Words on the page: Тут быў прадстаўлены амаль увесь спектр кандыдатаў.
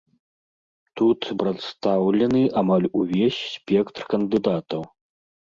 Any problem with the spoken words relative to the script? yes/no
yes